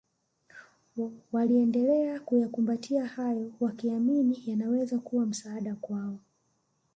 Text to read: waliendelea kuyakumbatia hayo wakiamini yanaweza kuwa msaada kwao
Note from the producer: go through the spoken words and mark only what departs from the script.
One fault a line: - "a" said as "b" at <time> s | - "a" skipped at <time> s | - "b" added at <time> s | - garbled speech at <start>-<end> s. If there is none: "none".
none